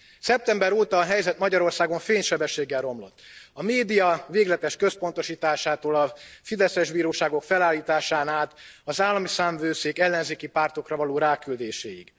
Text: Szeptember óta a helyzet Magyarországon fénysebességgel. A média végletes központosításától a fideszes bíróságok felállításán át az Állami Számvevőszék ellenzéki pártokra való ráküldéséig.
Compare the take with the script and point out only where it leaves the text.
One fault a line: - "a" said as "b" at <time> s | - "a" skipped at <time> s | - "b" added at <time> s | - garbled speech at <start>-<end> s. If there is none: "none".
- "romlott" added at 2.8 s